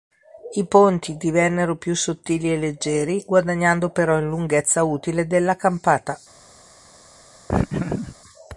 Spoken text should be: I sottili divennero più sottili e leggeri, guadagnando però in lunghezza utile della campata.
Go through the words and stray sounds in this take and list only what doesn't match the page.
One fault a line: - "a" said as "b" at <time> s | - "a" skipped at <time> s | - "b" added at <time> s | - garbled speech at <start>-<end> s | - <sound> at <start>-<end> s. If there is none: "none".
- "sottili" said as "ponti" at 0.7 s
- laugh at 7.5-8.2 s